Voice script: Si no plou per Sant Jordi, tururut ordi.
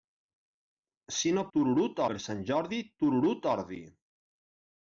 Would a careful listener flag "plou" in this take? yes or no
yes